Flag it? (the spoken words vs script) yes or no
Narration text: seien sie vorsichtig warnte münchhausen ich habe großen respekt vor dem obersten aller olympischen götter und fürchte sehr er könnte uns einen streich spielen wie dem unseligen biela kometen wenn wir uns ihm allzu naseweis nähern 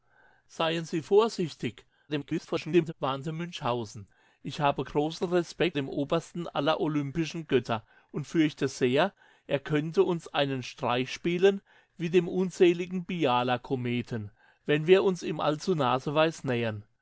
yes